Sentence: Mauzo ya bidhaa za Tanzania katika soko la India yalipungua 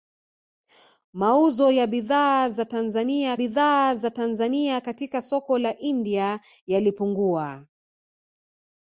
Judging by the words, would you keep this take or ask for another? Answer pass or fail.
fail